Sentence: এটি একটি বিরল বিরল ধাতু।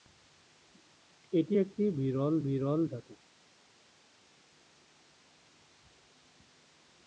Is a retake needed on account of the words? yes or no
no